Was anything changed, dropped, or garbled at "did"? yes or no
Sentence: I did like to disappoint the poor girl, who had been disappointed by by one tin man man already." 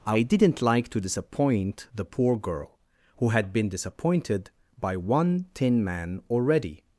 yes